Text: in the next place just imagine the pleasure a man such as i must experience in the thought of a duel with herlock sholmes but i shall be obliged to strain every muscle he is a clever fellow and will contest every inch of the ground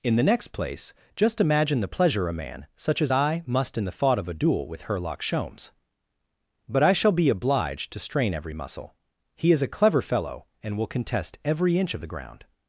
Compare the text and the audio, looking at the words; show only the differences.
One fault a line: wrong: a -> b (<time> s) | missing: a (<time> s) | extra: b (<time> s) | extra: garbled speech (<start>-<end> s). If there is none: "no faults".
missing: experience (3.8 s)